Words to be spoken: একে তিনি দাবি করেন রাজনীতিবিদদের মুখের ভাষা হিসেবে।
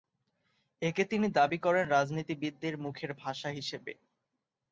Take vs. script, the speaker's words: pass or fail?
pass